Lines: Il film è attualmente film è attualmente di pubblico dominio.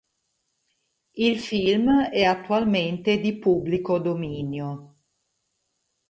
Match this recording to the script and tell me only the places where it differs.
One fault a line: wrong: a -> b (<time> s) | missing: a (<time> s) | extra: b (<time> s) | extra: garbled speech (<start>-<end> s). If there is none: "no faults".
missing: film è attualmente (3.2 s)